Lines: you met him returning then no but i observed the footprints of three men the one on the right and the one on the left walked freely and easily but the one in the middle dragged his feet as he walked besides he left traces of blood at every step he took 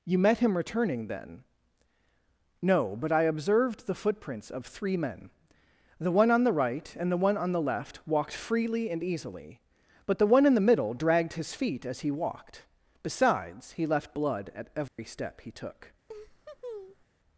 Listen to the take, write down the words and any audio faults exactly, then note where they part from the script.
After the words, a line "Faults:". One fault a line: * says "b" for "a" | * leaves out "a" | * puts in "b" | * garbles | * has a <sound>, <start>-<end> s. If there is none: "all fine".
you met him returning then no but i observed the footprints of three men the one on the right and the one on the left walked freely and easily but the one in the middle dragged his feet as he walked besides he left blood at every step he took
Faults:
* leaves out "traces of"
* has a dropout, 14.9-15.0 s
* has a laugh, 16.1-17.0 s